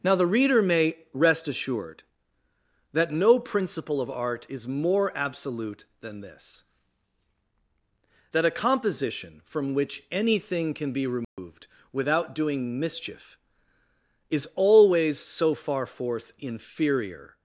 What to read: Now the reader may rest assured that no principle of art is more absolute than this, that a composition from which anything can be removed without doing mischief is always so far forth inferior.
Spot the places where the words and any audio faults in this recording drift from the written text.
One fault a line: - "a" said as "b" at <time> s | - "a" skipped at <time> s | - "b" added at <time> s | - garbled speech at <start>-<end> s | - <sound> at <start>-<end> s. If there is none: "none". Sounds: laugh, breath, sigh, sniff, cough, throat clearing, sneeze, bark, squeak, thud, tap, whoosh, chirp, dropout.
- dropout at 11.2-11.4 s